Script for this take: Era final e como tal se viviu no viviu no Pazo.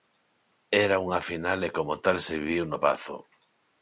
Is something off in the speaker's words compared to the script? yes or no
yes